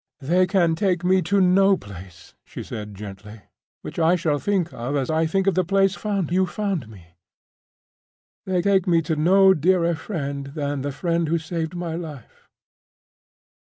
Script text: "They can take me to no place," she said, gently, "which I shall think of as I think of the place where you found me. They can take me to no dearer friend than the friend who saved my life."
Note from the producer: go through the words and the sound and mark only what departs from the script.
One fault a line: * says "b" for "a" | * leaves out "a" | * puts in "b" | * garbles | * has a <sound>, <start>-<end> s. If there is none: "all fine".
* says "found" for "where"
* leaves out "can"